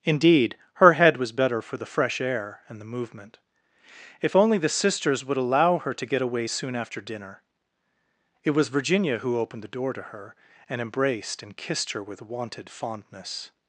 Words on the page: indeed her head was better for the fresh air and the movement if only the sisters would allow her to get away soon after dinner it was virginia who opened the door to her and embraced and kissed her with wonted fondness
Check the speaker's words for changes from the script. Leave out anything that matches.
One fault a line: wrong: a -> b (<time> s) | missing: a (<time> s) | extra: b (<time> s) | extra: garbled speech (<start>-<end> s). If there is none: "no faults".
no faults